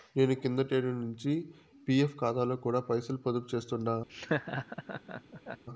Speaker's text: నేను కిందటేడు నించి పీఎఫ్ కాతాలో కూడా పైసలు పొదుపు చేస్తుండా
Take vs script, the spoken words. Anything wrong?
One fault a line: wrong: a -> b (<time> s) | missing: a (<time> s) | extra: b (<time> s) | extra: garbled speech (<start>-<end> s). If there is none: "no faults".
no faults